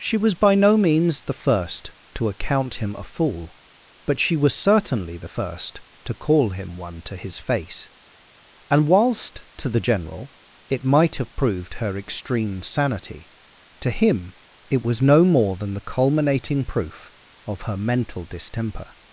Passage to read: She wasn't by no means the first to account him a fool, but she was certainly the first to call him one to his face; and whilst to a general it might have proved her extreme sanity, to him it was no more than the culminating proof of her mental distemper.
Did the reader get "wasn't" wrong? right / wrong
wrong